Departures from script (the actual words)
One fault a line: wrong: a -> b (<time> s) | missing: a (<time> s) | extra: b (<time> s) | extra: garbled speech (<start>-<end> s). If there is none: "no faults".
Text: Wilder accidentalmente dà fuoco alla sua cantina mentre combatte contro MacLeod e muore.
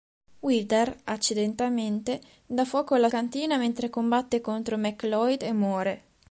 missing: sua (3.1 s)